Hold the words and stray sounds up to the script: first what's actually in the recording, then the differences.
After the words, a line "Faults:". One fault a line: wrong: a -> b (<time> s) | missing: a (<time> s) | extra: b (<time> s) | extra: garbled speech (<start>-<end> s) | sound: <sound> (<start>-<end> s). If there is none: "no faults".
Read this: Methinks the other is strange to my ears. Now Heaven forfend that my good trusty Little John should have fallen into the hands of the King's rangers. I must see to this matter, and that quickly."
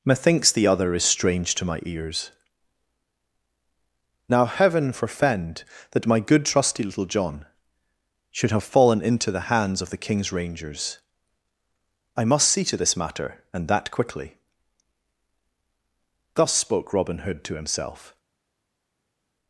Methinks the other is strange to my ears. Now Heaven forfend that my good trusty Little John should have fallen into the hands of the King's rangers. I must see to this matter, and that quickly." Thus spoke Robin Hood to himself
Faults:
extra: Thus spoke Robin Hood to himself (16.4 s)